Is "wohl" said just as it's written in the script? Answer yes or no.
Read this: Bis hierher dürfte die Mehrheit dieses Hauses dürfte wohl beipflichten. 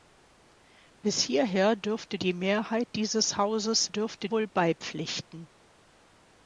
yes